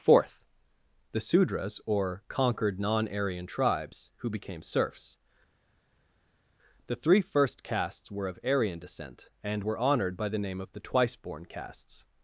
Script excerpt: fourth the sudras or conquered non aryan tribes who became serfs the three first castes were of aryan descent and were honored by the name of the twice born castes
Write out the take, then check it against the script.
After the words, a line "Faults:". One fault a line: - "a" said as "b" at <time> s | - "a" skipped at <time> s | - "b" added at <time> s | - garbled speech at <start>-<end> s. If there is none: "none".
fourth the sudras or conquered non aryan tribes who became serfs the three first castes were of aryan descent and were honored by the name of the twice born castes
Faults:
none